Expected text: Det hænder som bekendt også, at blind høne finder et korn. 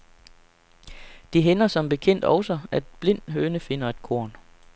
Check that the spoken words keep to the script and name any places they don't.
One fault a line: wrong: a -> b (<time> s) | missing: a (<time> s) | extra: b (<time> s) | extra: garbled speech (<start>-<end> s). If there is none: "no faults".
no faults